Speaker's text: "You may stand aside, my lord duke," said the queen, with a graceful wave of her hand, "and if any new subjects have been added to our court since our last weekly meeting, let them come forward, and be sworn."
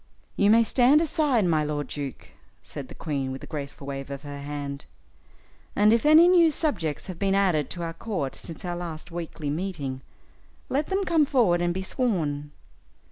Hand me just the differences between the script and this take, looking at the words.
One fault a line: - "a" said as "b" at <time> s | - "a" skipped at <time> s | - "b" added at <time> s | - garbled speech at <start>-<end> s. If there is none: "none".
none